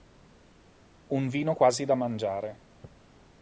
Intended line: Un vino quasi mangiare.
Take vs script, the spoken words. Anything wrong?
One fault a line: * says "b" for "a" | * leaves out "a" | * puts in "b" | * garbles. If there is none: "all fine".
* puts in "da"